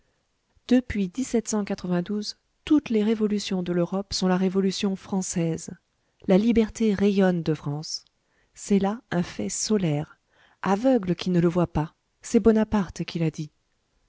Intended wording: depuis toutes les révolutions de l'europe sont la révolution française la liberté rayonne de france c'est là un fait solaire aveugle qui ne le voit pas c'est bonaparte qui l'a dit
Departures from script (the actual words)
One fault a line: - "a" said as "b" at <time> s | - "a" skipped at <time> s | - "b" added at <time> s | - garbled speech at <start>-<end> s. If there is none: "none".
none